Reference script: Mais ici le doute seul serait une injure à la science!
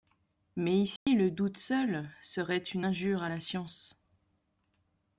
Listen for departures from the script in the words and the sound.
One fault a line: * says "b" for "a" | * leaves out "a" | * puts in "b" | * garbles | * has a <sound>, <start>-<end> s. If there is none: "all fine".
* has a dropout, 1.0-1.1 s